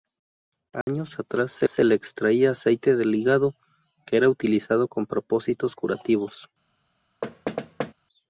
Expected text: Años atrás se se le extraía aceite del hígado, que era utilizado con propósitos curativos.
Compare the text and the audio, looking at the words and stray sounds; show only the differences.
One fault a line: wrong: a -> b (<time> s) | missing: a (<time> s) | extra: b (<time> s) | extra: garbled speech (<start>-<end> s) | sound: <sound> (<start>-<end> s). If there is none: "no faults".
sound: dropout (0.8-0.9 s)
sound: thud (7.2-7.9 s)